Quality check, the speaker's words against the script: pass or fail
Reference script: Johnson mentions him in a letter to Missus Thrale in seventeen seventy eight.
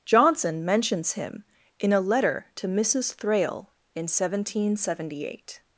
pass